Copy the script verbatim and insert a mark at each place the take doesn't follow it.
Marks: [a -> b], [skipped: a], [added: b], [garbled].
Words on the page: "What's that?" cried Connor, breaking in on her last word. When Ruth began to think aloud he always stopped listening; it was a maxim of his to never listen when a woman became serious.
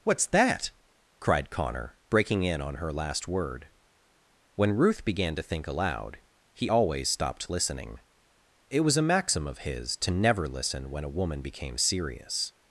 "What's that?" cried Connor, breaking in on her last word. When Ruth began to think aloud he always stopped listening; it was a maxim of his to never listen when a woman became serious.